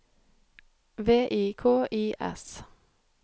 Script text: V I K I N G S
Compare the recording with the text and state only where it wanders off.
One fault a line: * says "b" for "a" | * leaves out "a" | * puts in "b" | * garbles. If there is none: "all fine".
* leaves out "N G"